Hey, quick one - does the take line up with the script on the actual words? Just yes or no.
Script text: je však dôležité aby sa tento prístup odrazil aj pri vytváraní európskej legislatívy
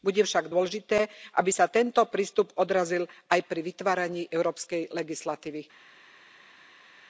no